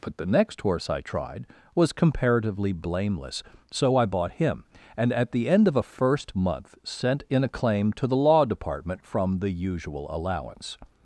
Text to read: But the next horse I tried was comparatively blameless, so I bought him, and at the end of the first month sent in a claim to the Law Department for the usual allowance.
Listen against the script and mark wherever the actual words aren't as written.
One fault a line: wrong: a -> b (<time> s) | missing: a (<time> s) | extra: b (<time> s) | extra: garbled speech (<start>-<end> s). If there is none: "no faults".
wrong: the -> a (5.8 s)
wrong: for -> from (9.0 s)